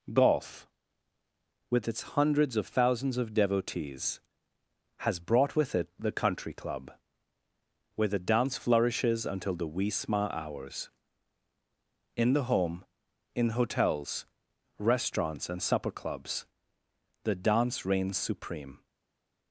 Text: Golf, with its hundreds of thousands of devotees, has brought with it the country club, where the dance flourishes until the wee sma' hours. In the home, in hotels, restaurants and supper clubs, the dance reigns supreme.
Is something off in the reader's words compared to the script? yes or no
no